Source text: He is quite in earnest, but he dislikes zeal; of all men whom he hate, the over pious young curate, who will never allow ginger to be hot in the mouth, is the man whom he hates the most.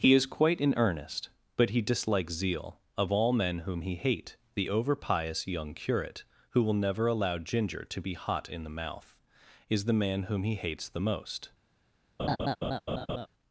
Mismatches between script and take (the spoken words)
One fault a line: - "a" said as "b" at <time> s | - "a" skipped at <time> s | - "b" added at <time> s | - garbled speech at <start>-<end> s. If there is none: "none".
none